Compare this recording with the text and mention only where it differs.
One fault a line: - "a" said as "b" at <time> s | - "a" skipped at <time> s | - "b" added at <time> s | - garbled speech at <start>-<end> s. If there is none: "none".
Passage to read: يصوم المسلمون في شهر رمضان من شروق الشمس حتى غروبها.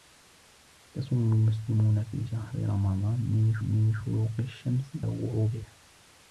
- "من" added at 3.6 s
- "حتى" skipped at 4.9 s